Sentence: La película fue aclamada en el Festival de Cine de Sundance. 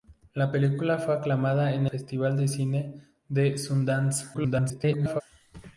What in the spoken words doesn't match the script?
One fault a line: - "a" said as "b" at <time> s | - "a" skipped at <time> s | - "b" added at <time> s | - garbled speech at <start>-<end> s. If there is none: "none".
- "el" skipped at 1.9 s
- garbled speech at 4.3-5.2 s